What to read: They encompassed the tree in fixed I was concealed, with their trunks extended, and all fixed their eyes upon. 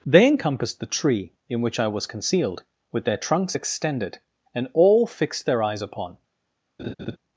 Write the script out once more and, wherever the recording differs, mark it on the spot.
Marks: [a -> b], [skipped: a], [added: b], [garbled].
They encompassed the tree in [fixed -> which] I was concealed, with their trunks extended, and all fixed their eyes upon.